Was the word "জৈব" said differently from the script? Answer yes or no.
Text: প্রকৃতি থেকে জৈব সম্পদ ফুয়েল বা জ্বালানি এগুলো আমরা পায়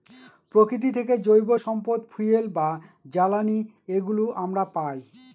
no